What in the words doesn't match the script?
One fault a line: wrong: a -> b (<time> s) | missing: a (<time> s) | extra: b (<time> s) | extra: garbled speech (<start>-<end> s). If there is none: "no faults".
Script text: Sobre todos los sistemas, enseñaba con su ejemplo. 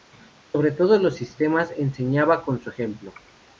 no faults